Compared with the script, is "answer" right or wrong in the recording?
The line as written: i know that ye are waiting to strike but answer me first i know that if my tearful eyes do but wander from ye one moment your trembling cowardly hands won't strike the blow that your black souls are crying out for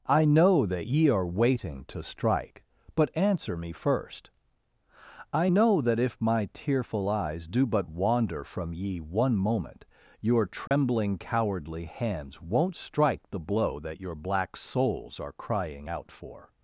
right